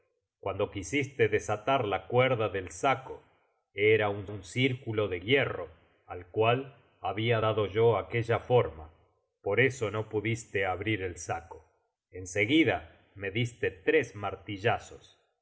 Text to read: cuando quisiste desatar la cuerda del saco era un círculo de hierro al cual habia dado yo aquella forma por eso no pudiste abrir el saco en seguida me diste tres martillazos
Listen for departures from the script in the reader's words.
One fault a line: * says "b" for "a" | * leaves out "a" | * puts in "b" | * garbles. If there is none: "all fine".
* puts in "un"